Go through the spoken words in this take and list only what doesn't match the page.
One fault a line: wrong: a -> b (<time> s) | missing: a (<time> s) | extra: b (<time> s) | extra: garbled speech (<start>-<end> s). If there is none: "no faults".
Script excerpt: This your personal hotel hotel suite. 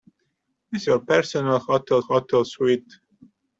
no faults